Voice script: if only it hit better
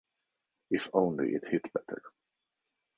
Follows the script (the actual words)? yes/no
yes